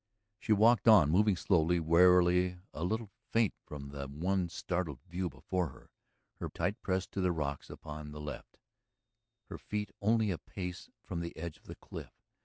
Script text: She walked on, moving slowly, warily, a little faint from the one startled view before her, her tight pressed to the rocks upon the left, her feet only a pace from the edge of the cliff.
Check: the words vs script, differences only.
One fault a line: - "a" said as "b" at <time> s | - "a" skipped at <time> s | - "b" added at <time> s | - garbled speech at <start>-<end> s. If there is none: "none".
none